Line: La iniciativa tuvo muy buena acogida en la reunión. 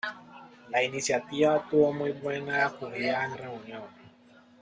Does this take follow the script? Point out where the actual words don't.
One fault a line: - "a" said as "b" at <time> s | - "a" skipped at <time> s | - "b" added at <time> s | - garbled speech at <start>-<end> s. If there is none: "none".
- "la" skipped at 3.4 s